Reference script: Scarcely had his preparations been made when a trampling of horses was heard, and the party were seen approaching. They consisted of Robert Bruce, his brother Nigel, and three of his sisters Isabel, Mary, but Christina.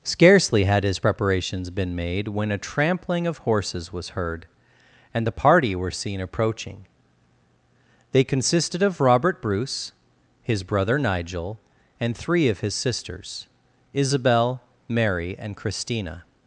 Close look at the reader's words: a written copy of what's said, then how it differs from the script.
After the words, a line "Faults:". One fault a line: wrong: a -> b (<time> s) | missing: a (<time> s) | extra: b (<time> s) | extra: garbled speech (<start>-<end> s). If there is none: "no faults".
Scarcely had his preparations been made when a trampling of horses was heard, and the party were seen approaching. They consisted of Robert Bruce, his brother Nigel, and three of his sisters Isabel, Mary, and Christina.
Faults:
wrong: but -> and (15.4 s)